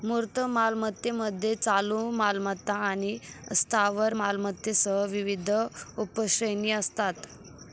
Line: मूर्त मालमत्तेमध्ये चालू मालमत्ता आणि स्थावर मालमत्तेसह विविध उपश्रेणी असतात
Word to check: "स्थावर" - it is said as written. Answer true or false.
true